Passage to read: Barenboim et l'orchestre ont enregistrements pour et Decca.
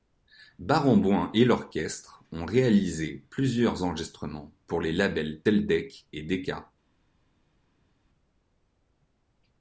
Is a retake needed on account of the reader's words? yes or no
yes